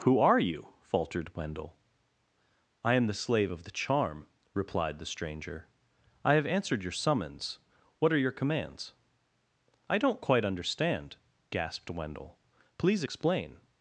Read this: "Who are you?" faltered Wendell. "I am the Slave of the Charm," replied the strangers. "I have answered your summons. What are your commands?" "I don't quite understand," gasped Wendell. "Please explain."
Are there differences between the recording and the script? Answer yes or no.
yes